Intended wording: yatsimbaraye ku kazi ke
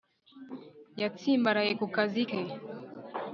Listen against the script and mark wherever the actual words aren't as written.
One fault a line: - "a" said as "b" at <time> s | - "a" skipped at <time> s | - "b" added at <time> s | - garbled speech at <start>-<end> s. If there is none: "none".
none